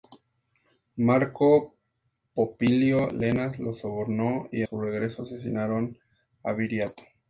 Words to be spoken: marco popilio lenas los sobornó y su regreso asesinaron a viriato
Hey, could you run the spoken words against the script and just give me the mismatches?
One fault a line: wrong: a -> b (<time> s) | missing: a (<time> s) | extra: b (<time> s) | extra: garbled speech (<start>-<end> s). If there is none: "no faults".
no faults